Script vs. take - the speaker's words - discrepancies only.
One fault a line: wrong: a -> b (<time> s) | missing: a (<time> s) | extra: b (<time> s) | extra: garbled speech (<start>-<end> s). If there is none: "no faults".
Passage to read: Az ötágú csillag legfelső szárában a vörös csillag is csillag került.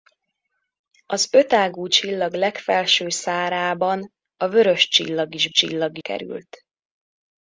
no faults